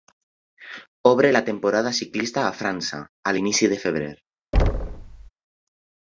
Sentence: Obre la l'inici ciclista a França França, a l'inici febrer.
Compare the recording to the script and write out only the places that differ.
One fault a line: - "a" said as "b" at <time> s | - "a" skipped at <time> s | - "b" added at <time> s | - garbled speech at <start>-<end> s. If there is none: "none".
- "l'inici" said as "temporada" at 1.5 s
- "França" skipped at 3.0 s
- "de" added at 3.7 s